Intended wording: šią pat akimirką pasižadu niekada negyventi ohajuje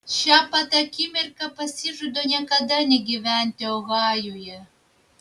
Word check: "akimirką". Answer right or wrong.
right